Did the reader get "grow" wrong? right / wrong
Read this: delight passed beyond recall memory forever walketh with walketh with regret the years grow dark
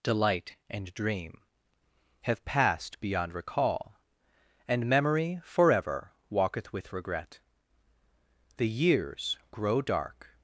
right